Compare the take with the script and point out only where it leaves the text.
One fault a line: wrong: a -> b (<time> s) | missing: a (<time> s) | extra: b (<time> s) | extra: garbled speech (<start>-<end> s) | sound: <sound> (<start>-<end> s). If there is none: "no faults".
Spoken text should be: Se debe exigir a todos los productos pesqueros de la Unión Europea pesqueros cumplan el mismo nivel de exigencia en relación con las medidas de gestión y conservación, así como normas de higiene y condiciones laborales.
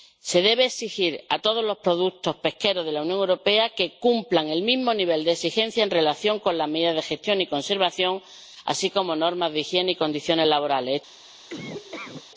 wrong: pesqueros -> que (3.7 s)
sound: laugh (11.5-12.3 s)